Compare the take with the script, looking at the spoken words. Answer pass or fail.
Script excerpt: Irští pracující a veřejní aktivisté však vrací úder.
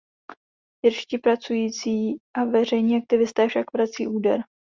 pass